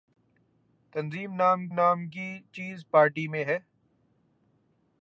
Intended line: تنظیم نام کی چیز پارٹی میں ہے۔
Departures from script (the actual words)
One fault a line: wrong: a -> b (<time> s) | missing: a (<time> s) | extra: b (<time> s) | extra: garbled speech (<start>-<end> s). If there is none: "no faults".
extra: نام (1.7 s)